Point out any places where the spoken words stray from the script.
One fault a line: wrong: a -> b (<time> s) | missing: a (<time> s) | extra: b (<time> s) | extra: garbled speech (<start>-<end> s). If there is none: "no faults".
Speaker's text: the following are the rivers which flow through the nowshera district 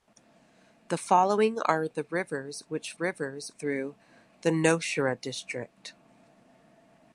wrong: flow -> rivers (3.0 s)